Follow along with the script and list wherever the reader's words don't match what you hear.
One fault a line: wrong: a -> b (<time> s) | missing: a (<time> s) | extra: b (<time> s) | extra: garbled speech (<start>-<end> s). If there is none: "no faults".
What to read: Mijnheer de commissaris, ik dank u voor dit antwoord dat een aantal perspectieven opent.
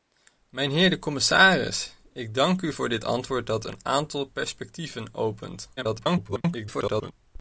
extra: garbled speech (5.8-7.1 s)